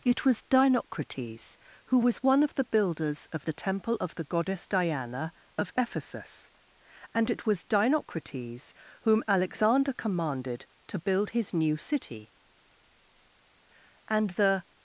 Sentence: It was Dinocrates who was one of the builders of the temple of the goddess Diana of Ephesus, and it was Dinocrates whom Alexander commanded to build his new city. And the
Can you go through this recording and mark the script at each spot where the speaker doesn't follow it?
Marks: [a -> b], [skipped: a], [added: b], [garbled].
It was Dinocrates who was one of the builders of the temple of the goddess Diana of Ephesus, and it was Dinocrates whom Alexander commanded to build his new city. And the